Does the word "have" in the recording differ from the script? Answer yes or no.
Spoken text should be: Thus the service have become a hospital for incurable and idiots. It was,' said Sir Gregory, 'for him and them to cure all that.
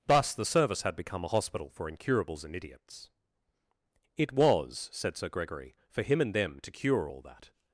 yes